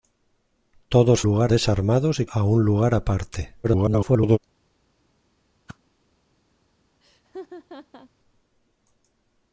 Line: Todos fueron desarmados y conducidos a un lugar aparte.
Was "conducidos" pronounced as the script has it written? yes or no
no